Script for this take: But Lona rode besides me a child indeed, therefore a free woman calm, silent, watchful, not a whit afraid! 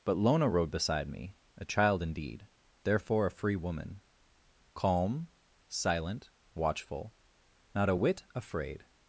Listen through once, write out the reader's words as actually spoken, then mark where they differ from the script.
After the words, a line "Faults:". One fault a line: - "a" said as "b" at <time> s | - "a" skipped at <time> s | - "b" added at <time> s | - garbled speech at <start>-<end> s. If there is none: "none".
But Lona rode beside me a child indeed, therefore a free woman calm, silent, watchful, not a whit afraid!
Faults:
- "besides" said as "beside" at 0.7 s